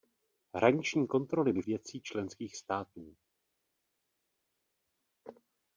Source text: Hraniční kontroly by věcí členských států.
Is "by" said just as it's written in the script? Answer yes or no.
yes